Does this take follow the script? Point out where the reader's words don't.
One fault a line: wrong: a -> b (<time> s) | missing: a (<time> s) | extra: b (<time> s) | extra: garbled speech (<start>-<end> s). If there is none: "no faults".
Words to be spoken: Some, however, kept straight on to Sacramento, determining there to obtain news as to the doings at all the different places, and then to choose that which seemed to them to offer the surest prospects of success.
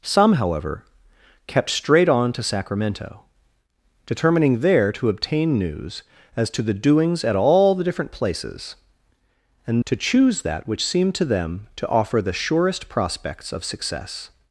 missing: then (9.8 s)